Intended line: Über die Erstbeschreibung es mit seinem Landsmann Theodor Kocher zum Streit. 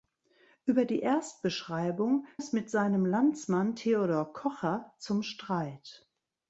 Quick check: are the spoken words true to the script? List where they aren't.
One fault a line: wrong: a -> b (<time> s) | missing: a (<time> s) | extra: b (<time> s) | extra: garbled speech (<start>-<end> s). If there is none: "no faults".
no faults